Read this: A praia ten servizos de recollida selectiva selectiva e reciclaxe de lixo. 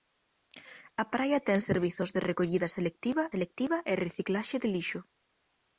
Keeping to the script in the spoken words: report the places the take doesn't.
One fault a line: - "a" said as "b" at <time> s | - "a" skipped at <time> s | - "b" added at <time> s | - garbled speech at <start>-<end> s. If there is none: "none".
none